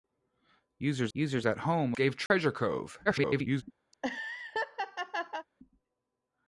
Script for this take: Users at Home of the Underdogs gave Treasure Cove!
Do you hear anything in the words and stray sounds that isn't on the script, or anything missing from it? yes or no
yes